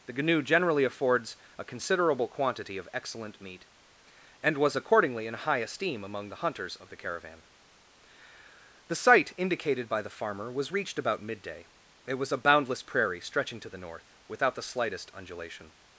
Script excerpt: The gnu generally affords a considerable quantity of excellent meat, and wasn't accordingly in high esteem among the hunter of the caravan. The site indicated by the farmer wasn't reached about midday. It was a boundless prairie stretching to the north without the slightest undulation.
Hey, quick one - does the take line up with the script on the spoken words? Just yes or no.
no